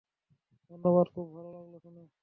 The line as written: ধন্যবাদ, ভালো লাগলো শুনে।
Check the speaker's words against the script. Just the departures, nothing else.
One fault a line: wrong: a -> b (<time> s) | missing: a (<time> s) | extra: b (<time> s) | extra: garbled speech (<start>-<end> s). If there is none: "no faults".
extra: খুব (1.1 s)